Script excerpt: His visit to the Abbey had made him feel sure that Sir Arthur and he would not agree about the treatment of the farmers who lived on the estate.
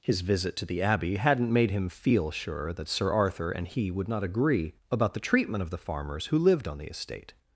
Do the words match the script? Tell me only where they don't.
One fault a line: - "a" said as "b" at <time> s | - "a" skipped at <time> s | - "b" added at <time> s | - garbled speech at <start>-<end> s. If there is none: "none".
- "had" said as "hadn't" at 1.2 s